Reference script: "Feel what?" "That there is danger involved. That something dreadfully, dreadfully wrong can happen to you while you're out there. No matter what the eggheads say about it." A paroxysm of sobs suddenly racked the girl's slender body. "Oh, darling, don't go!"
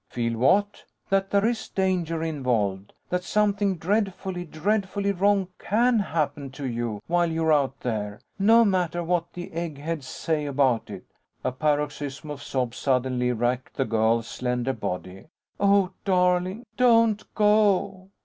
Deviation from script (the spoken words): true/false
false